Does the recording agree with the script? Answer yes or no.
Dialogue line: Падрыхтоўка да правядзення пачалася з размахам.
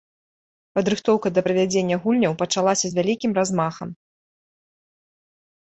no